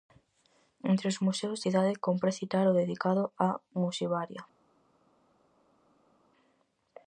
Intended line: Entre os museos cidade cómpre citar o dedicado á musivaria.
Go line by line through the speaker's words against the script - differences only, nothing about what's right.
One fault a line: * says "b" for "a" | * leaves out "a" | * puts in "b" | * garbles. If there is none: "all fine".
all fine